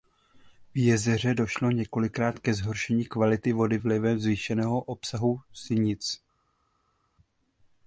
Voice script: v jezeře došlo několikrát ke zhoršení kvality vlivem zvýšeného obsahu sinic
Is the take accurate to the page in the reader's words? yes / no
no